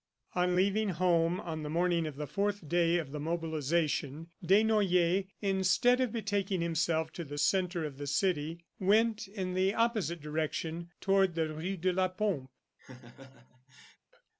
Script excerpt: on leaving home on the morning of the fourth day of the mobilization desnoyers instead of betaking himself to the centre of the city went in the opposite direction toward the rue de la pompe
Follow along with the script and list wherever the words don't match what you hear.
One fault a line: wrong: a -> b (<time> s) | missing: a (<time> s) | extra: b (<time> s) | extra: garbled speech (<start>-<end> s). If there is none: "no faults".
no faults